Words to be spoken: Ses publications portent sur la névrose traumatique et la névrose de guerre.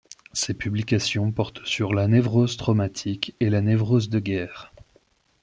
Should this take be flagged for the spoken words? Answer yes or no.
no